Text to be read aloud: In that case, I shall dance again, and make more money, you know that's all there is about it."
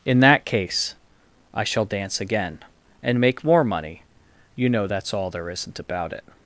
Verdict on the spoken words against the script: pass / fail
fail